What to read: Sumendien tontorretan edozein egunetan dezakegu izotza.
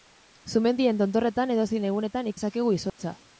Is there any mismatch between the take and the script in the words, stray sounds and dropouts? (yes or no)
yes